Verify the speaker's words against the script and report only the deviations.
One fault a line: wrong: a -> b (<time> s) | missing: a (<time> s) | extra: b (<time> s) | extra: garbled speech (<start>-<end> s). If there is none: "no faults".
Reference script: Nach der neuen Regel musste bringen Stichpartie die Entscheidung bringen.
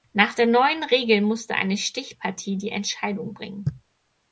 wrong: bringen -> eine (1.5 s)